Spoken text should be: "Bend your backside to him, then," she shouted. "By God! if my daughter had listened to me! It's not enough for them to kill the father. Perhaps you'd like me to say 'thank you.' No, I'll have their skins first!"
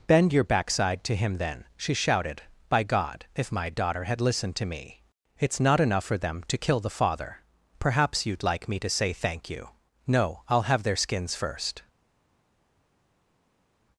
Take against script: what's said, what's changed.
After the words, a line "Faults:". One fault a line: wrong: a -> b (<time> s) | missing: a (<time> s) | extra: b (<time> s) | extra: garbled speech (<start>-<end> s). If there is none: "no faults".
"Bend your backside to him, then," she shouted. "By God! if my daughter had listened to me! It's not enough for them to kill the father. Perhaps you'd like me to say 'thank you.' No, I'll have their skins first!"
Faults:
no faults